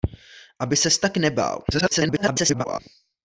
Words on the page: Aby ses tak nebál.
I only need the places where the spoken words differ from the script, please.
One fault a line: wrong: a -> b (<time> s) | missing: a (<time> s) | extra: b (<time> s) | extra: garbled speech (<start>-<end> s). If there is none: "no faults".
extra: garbled speech (1.7-2.8 s)